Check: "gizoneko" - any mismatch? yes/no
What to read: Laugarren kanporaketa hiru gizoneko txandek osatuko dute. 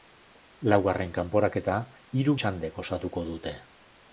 yes